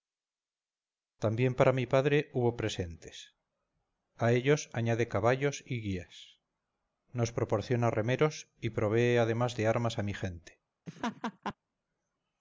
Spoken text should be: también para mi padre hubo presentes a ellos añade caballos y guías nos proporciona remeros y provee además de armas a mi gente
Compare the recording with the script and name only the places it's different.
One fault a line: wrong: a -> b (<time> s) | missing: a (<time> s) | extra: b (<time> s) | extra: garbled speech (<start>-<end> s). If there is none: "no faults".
no faults